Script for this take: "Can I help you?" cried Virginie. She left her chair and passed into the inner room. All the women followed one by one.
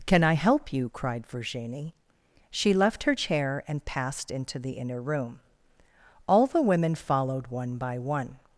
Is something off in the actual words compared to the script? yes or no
no